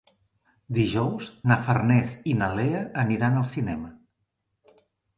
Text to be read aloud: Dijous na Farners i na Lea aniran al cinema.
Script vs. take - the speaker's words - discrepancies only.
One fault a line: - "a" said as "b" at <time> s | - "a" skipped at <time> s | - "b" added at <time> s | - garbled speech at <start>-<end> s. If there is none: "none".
none